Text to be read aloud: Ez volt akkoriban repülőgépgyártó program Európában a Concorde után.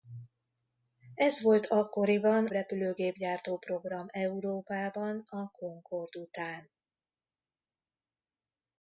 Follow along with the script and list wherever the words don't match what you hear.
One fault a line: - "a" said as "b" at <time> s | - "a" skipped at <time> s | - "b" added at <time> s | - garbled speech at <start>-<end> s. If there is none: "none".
none